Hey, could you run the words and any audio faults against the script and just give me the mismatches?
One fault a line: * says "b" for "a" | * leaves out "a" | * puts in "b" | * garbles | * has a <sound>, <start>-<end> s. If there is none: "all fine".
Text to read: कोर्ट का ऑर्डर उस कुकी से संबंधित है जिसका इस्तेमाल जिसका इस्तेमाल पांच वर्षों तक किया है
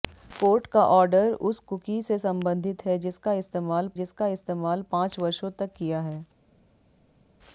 all fine